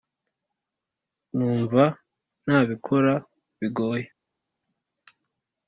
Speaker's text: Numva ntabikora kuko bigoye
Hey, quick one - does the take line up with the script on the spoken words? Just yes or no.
no